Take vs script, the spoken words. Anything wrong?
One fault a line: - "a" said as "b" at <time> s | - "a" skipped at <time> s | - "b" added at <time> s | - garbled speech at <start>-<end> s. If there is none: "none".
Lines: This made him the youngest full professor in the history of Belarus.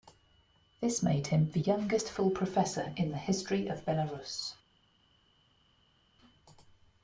none